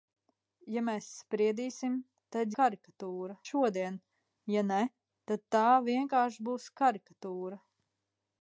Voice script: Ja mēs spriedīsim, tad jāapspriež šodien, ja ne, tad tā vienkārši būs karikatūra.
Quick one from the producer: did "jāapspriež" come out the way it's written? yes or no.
no